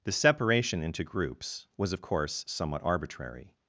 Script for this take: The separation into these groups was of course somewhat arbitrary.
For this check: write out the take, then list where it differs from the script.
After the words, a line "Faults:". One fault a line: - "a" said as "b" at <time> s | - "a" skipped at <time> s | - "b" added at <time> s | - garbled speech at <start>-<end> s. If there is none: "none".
The separation into groups was of course somewhat arbitrary.
Faults:
- "these" skipped at 1.0 s